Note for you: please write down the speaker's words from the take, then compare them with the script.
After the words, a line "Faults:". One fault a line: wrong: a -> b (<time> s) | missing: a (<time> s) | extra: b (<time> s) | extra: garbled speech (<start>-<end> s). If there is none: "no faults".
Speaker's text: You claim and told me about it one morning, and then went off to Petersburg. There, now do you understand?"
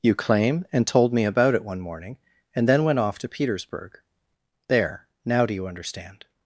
You claim and told me about it one morning, and then went off to Petersburg. There, now do you understand?"
Faults:
no faults